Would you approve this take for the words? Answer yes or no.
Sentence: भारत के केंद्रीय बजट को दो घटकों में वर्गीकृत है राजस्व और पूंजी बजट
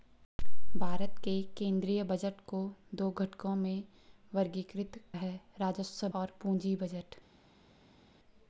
yes